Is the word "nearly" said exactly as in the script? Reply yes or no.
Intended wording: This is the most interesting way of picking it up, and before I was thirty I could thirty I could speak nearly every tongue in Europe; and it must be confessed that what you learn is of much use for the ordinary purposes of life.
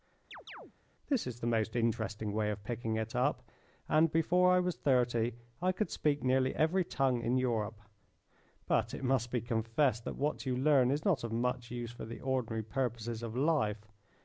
yes